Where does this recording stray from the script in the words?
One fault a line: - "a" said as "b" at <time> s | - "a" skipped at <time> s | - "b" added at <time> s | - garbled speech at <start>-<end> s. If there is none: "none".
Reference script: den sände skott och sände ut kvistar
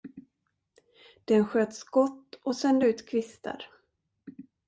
- "sände" said as "sköt" at 1.4 s